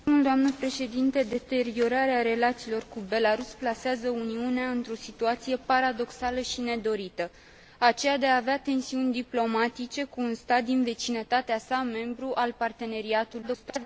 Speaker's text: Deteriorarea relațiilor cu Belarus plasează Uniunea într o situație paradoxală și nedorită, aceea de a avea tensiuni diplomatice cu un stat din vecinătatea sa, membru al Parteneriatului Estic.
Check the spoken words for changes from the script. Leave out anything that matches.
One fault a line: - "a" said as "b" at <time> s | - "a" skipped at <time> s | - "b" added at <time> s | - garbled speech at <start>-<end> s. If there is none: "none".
- garbled speech at 13.4-13.9 s